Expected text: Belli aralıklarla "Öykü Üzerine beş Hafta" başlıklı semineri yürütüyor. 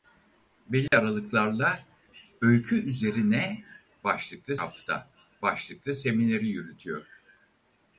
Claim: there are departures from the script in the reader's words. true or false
true